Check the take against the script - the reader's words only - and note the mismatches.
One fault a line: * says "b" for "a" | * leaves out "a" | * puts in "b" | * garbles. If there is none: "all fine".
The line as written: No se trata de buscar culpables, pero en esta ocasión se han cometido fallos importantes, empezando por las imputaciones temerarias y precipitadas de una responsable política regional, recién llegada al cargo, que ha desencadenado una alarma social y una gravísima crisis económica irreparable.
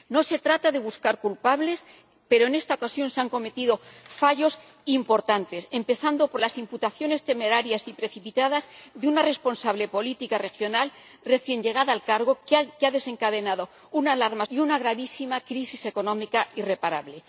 * leaves out "social"